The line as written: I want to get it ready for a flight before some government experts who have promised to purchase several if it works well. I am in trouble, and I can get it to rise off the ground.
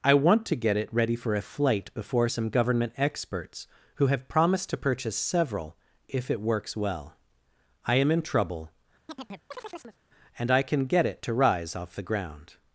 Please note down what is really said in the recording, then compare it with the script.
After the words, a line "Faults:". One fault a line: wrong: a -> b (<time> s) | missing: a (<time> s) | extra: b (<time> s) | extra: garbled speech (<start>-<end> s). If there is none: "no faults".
I want to get it ready for a flight before some government experts who have promised to purchase several if it works well. I am in trouble, and I can get it to rise off the ground.
Faults:
no faults